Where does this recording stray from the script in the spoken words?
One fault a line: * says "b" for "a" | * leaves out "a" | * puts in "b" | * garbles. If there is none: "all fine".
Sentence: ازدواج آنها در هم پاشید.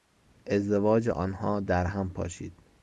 all fine